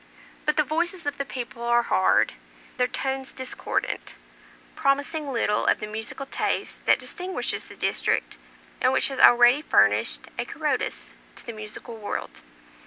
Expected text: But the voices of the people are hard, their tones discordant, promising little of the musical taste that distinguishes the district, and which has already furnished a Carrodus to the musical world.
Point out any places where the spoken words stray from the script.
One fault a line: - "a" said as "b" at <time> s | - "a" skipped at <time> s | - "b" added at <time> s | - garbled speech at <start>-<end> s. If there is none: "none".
none